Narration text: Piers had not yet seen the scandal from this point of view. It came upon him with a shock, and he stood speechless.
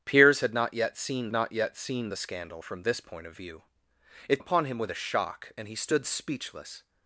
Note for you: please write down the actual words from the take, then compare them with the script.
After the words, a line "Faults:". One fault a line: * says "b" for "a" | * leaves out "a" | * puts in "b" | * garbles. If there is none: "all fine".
Piers had not yet seen not yet seen the scandal from this point of view. It upon him with a shock, and he stood speechless.
Faults:
* puts in "not yet seen"
* leaves out "came"